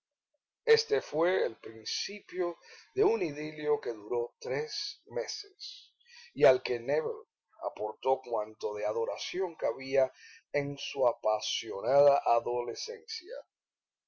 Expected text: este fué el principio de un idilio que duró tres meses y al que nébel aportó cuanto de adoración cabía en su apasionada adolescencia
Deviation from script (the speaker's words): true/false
false